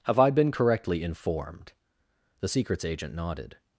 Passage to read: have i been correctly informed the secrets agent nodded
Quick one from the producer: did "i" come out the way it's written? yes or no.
yes